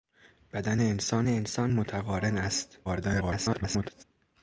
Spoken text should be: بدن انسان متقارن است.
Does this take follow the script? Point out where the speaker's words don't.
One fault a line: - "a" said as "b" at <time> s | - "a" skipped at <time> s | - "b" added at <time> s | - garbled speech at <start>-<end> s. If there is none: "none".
- "انسان" added at 1.3 s
- garbled speech at 2.8-4.0 s